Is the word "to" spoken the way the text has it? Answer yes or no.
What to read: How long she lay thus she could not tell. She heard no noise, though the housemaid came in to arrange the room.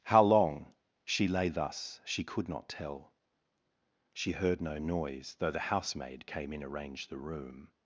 no